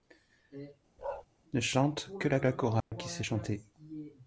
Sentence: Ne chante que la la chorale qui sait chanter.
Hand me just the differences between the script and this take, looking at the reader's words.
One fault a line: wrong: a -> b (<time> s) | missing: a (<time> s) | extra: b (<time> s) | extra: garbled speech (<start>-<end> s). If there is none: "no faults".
no faults